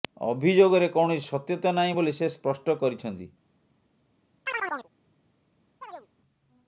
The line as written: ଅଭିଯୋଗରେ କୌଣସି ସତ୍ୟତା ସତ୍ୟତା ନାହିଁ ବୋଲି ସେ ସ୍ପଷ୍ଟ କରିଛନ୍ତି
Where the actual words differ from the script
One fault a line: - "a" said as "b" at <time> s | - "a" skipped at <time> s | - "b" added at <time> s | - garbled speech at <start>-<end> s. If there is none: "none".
- "ସତ୍ୟତା" skipped at 1.7 s